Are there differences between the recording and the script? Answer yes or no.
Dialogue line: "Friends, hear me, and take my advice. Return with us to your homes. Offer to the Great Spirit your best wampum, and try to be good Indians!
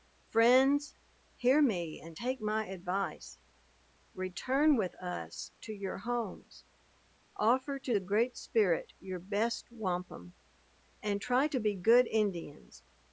no